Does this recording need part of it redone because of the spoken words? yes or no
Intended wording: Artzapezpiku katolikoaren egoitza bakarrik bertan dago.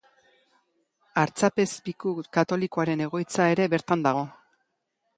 yes